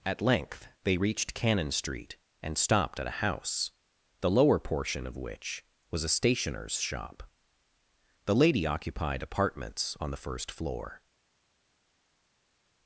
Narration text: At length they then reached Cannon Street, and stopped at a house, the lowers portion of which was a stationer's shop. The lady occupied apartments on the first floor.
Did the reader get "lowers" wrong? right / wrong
wrong